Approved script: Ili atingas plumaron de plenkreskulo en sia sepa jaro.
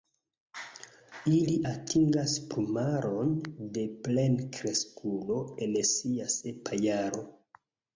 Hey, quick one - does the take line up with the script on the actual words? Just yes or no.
yes